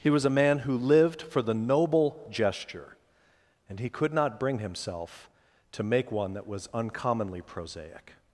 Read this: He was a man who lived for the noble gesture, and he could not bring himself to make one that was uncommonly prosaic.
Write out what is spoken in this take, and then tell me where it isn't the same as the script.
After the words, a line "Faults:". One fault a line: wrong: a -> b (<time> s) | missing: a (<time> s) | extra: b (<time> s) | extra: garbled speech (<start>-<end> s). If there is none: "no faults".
He was a man who lived for the noble gesture, and he could not bring himself to make one that was uncommonly prosaic.
Faults:
no faults